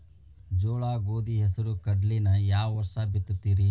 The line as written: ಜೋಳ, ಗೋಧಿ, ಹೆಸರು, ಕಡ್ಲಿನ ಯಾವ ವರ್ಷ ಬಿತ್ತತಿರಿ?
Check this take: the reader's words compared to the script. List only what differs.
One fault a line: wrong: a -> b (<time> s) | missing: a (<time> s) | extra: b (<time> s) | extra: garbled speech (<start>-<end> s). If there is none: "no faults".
no faults